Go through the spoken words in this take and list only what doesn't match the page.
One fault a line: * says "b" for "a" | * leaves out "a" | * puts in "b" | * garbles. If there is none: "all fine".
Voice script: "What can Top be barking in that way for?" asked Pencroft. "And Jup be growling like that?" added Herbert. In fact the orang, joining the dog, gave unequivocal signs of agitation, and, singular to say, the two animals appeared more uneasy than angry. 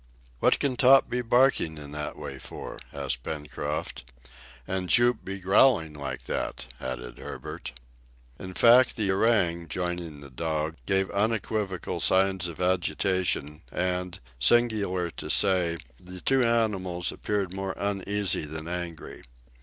all fine